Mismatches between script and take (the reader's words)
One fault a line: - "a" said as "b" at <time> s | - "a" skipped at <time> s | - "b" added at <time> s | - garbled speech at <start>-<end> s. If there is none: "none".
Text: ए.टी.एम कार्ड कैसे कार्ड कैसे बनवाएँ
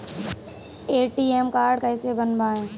- "कार्ड कैसे" skipped at 2.1 s